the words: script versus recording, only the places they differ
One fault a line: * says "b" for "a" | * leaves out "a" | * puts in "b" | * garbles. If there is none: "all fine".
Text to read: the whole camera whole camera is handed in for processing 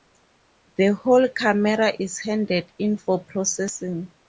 * leaves out "whole camera"